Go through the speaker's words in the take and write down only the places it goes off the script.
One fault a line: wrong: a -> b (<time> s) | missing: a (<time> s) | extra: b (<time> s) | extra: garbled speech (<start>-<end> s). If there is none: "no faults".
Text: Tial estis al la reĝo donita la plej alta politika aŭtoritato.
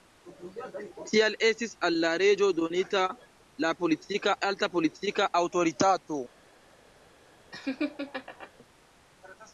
wrong: plej -> politika (3.8 s)